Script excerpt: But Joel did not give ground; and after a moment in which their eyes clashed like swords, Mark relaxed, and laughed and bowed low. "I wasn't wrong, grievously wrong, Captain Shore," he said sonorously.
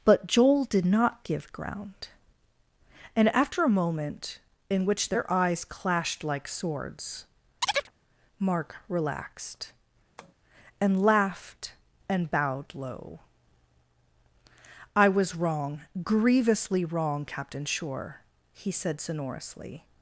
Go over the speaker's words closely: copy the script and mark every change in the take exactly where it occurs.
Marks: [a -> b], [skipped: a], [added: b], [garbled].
But Joel did not give ground; and after a moment in which their eyes clashed like swords, Mark relaxed, and laughed and bowed low. "I [wasn't -> was] wrong, grievously wrong, Captain Shore," he said sonorously.